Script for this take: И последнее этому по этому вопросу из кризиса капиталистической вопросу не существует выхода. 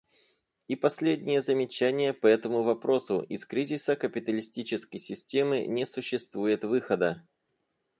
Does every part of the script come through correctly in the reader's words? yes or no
no